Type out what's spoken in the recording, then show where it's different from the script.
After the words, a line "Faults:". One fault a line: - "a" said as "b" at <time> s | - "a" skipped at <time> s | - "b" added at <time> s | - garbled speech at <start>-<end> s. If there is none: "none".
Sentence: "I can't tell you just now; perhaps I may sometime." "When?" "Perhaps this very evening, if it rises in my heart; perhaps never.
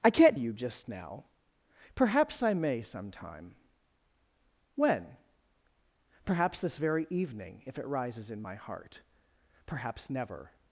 "I can't you just now; perhaps I may sometime." "When?" "Perhaps this very evening, if it rises in my heart; perhaps never.
Faults:
- "tell" skipped at 0.4 s